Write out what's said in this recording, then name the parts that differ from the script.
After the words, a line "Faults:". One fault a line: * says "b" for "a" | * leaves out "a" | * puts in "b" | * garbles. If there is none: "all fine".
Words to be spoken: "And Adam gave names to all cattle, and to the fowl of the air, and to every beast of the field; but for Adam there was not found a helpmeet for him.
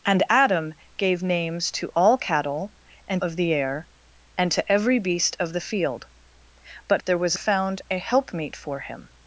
"And Adam gave names to all cattle, and of the air, and to every beast of the field; but there was found a helpmeet for him.
Faults:
* leaves out "to the fowl"
* leaves out "for Adam"
* leaves out "not"